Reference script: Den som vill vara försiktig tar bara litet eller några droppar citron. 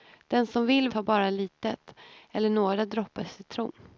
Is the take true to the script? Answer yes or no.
no